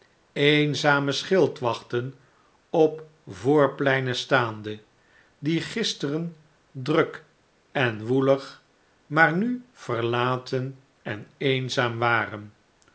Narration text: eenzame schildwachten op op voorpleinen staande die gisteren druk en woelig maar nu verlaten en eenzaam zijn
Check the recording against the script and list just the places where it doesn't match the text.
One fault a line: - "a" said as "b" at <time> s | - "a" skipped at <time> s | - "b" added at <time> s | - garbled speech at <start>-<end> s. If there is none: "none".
- "op" skipped at 3.0 s
- "zijn" said as "waren" at 12.0 s